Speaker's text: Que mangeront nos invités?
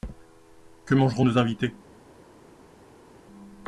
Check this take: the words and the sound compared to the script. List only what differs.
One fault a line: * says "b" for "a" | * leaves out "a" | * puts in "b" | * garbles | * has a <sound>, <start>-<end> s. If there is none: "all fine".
all fine